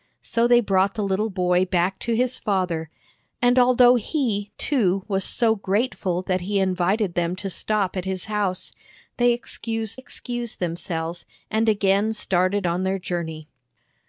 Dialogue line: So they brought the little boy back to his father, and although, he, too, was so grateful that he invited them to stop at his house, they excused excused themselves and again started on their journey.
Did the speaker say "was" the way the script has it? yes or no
yes